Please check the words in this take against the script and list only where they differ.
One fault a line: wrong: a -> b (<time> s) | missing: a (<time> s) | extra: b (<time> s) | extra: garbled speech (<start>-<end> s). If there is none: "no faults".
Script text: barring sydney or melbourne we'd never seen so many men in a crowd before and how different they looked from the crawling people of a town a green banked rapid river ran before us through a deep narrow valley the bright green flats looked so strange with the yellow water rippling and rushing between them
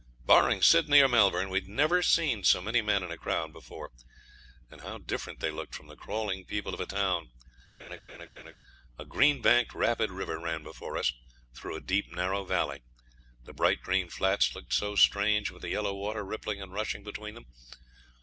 no faults